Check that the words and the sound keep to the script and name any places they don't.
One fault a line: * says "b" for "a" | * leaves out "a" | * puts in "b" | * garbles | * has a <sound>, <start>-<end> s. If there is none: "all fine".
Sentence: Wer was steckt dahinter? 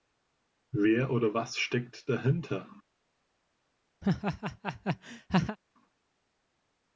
* puts in "oder"
* has a laugh, 4.0-5.6 s